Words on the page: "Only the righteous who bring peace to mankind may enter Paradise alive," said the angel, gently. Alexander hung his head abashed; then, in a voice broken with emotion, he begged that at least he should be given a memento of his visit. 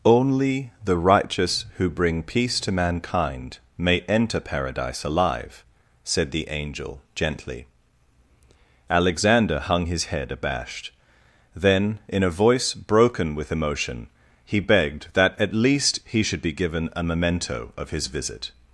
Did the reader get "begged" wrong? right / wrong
right